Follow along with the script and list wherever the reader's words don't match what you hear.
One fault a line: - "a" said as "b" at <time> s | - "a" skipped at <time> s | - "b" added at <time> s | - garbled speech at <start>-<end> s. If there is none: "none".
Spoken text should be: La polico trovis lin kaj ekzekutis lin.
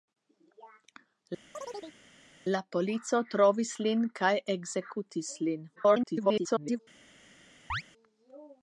- garbled speech at 5.8-6.8 s